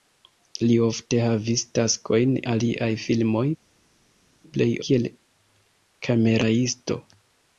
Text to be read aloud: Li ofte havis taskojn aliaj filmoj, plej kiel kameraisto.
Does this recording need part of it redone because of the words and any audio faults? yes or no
no